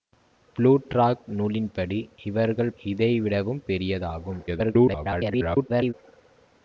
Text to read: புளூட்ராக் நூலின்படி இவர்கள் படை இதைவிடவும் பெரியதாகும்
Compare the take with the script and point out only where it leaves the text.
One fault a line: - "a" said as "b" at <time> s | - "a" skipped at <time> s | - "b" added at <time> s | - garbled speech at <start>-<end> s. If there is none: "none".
- "படை" skipped at 2.7 s
- garbled speech at 4.5-5.9 s